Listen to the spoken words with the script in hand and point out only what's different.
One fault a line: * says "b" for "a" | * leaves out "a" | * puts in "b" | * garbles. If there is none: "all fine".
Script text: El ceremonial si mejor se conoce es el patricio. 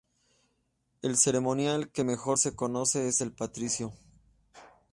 * says "que" for "si"